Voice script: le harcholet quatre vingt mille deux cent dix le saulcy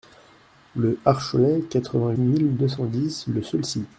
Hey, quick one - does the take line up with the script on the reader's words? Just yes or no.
yes